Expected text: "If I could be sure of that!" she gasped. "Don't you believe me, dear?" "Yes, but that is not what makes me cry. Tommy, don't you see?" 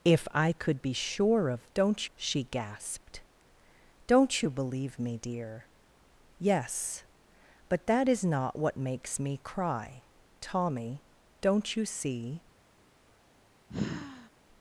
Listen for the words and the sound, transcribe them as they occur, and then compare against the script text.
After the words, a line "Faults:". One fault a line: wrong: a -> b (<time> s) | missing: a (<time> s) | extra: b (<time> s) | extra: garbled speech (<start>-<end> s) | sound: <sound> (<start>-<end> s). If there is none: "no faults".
"If I could be sure of don't!" she gasped. "Don't you believe me, dear?" "Yes, but that is not what makes me cry. Tommy, don't you see?"
Faults:
wrong: that -> don't (1.7 s)
sound: sigh (13.7-14.3 s)